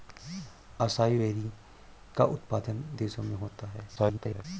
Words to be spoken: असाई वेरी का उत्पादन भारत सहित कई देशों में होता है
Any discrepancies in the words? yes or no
yes